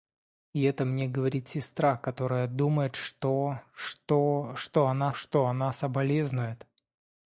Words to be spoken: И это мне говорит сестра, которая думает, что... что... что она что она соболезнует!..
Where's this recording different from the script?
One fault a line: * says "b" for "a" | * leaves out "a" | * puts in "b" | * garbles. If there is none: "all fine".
all fine